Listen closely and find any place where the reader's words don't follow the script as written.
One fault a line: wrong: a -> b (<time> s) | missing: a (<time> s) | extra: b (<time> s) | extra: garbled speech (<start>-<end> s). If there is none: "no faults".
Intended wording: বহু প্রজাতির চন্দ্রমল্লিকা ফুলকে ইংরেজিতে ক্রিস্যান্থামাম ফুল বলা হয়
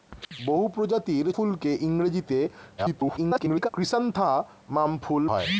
missing: চন্দ্রমল্লিকা (1.2 s)
extra: garbled speech (2.8-3.7 s)
missing: বলা (5.2 s)